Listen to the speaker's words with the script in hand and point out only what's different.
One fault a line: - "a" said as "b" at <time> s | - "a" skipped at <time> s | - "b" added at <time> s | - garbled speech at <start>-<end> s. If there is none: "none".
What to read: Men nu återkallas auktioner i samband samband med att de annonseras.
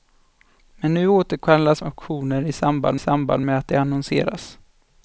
none